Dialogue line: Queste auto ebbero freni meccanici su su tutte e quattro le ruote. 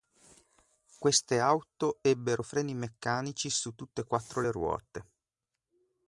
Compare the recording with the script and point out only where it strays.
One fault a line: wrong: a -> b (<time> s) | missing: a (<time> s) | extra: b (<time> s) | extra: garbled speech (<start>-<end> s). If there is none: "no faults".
missing: su (3.7 s)